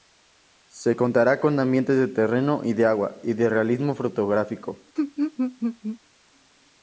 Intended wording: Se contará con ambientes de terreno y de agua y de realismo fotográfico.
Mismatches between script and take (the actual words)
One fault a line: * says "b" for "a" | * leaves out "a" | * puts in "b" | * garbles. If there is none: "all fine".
all fine